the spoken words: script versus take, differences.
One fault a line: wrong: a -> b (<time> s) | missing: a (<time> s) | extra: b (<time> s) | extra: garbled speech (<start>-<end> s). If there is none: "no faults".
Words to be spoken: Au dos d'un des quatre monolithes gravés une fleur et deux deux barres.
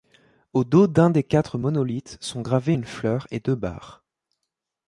extra: sont (2.2 s)
missing: deux (3.5 s)